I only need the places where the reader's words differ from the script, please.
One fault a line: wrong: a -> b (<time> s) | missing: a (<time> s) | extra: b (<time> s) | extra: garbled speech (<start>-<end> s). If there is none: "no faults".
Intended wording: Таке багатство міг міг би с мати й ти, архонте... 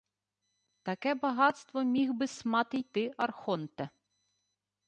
missing: міг (2.1 s)